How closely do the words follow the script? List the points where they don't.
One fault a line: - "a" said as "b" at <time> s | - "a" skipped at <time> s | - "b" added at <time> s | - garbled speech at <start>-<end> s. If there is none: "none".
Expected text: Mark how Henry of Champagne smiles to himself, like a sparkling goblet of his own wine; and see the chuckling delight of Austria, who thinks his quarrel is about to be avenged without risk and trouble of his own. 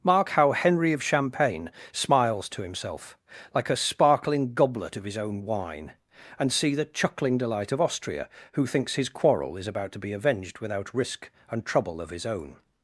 none